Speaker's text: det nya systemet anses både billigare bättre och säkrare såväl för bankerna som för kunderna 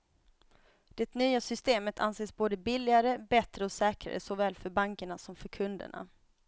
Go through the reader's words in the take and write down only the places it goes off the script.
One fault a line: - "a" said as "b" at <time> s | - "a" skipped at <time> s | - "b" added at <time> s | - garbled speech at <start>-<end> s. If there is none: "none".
none